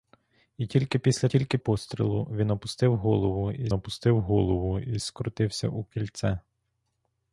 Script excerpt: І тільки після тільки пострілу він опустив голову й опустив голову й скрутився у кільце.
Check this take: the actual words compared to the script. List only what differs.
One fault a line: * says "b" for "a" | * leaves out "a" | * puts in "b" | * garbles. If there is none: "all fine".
all fine